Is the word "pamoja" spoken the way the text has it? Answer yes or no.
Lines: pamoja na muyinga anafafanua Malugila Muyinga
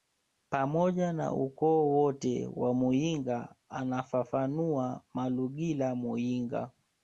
yes